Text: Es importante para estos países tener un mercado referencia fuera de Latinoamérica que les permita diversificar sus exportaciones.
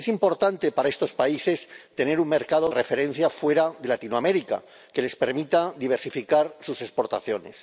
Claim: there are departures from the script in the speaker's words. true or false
false